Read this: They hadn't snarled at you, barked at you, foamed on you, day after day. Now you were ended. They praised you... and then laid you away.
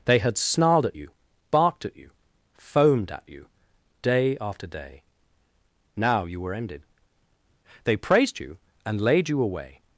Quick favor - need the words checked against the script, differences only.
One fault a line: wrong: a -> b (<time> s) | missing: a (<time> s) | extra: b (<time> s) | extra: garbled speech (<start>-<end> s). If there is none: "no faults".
wrong: hadn't -> had (0.2 s)
wrong: on -> at (3.1 s)
missing: then (9.0 s)